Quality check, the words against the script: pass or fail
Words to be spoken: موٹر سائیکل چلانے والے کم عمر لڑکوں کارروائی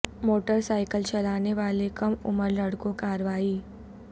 pass